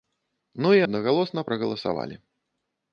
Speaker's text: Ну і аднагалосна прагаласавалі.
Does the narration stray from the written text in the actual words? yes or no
no